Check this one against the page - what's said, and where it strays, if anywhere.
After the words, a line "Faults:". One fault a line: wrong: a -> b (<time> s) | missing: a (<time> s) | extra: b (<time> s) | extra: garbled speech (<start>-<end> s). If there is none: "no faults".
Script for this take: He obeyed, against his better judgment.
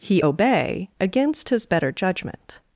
He obey, against his better judgment.
Faults:
wrong: obeyed -> obey (0.2 s)